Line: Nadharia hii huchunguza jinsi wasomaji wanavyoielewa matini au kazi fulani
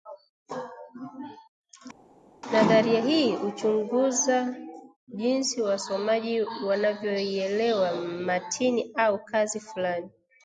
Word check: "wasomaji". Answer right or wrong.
right